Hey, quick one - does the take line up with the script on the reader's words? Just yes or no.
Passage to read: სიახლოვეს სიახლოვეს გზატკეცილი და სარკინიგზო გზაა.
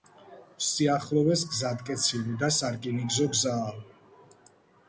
no